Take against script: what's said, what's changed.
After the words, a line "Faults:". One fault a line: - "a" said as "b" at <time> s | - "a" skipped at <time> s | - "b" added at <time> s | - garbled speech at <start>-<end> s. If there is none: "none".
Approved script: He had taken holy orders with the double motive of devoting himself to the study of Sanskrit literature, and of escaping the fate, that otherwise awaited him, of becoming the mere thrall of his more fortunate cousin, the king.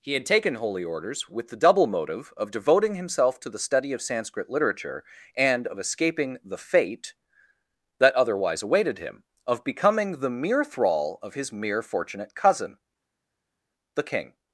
He had taken holy orders with the double motive of devoting himself to the study of Sanskrit literature, and of escaping the fate, that otherwise awaited him, of becoming the mere thrall of his mere fortunate cousin, the king.
Faults:
- "more" said as "mere" at 11.5 s